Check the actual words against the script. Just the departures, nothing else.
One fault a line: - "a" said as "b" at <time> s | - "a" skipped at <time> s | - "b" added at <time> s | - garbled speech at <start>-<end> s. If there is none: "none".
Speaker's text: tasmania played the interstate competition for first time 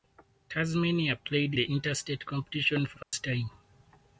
none